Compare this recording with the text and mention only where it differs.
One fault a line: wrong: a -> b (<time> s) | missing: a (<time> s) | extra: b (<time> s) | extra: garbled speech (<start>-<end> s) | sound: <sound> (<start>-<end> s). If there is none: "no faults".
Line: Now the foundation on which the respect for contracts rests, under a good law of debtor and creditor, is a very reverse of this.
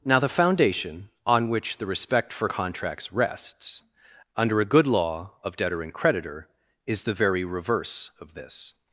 wrong: a -> the (7.0 s)